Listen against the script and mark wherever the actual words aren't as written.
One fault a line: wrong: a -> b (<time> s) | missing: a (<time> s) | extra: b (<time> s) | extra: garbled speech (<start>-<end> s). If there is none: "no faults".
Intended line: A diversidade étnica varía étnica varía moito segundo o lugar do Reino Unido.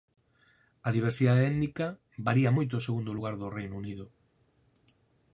missing: étnica varía (2.5 s)